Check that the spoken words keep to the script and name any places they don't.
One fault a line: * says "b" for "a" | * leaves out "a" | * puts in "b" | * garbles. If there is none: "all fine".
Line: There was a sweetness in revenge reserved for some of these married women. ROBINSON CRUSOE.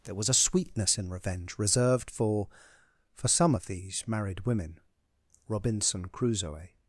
* puts in "for"